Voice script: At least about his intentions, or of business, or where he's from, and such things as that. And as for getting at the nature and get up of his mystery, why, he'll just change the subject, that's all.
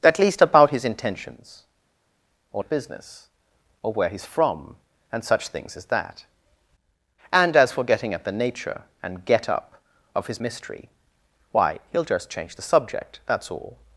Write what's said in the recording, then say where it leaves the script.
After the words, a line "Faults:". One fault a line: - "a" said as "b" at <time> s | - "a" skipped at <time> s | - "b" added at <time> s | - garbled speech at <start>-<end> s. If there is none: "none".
At least about his intentions, or of business, or where he's from, and such things as that. And as for getting at the nature and get up of his mystery, why, he'll just change the subject, that's all.
Faults:
none